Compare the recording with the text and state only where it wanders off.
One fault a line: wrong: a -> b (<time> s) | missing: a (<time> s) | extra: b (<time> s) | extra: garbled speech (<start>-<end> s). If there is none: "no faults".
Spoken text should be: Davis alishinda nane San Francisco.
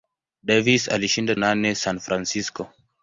no faults